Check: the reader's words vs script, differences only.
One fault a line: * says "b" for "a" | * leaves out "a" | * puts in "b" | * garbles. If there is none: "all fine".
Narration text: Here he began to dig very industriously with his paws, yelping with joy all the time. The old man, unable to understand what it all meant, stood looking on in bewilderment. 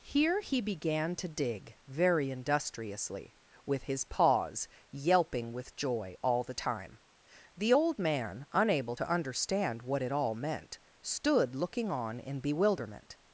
all fine